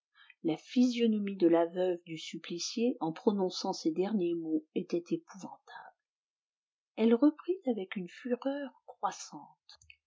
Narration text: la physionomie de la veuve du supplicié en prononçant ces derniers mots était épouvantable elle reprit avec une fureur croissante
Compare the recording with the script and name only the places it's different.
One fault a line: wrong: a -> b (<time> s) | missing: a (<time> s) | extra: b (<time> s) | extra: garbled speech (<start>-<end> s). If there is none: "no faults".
no faults